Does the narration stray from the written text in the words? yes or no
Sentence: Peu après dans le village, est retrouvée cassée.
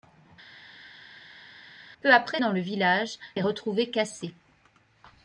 no